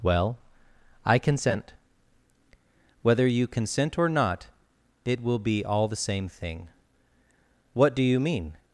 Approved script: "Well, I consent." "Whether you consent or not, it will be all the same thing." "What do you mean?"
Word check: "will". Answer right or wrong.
right